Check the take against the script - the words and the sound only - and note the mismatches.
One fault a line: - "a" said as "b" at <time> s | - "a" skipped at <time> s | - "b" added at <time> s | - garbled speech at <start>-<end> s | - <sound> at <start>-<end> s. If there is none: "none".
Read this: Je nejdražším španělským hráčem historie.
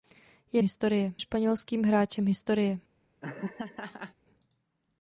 - "nejdražším" said as "historie" at 0.6 s
- laugh at 3.2-4.1 s